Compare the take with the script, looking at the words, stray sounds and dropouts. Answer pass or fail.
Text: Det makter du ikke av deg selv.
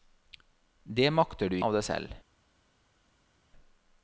fail